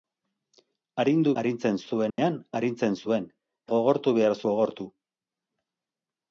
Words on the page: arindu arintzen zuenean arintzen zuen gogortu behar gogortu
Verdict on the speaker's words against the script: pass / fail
pass